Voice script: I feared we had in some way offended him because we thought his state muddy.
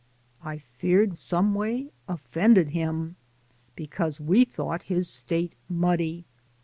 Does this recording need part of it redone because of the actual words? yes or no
yes